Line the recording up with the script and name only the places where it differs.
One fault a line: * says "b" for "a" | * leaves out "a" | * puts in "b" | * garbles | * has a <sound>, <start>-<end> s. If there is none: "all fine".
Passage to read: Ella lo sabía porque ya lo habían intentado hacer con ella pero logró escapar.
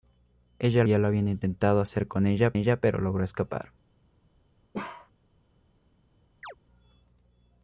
* leaves out "lo sabía porque"
* puts in "ella"
* has a bark, 4.7-5.1 s
* has a chirp, 6.4-6.6 s